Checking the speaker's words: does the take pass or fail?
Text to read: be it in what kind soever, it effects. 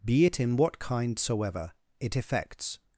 pass